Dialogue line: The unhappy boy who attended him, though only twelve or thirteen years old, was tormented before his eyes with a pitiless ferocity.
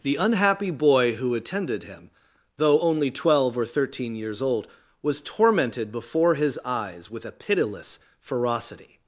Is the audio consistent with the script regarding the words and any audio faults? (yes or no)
yes